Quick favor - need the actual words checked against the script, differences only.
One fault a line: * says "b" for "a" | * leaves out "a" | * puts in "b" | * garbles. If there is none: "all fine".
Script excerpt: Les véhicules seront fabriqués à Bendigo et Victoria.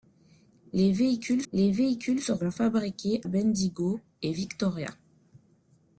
* puts in "les véhicules"
* leaves out "à"